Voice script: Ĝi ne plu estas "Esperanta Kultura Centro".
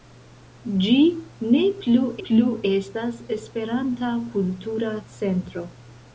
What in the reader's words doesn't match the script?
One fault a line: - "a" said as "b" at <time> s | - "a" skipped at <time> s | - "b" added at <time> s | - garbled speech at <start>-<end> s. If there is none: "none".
- "plu" added at 2.3 s